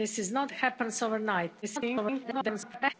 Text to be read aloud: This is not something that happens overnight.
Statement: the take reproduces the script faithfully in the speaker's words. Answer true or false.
false